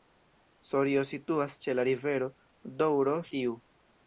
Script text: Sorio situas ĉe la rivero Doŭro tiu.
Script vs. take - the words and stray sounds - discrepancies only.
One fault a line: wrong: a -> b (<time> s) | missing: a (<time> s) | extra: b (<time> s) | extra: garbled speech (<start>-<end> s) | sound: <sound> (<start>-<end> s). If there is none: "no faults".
no faults